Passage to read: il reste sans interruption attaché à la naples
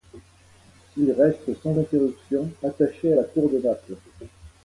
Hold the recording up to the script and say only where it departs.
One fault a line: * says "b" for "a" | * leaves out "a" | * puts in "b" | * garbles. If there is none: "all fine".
* puts in "cour de"